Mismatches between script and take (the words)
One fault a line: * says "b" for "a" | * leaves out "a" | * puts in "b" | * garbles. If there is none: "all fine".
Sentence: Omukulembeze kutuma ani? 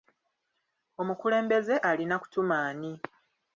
* puts in "alina"